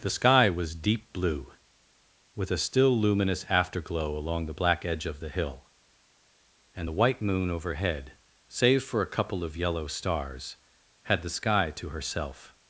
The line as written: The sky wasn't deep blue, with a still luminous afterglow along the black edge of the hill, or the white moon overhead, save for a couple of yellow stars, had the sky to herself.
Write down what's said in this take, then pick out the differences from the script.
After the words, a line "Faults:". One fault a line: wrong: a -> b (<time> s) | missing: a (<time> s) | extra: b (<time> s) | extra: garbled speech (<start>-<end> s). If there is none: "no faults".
The sky was deep blue, with a still luminous afterglow along the black edge of the hill, and the white moon overhead, save for a couple of yellow stars, had the sky to herself.
Faults:
wrong: wasn't -> was (0.5 s)
wrong: or -> and (6.8 s)